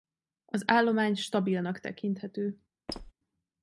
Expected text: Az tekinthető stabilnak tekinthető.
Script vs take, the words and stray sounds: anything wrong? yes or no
yes